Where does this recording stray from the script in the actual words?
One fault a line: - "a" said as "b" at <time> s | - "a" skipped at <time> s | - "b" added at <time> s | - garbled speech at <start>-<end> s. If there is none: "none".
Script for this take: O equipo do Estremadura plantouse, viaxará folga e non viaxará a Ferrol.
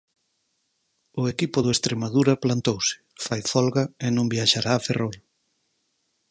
- "viaxará" said as "fai" at 3.3 s